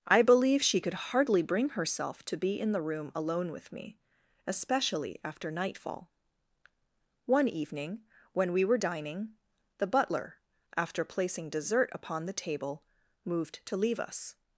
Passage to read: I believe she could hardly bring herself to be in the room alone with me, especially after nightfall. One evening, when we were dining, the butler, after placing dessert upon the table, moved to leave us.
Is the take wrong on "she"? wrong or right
right